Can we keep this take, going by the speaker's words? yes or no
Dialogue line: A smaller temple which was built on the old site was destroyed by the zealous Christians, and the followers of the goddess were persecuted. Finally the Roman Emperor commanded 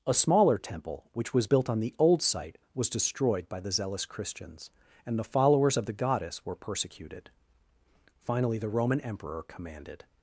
yes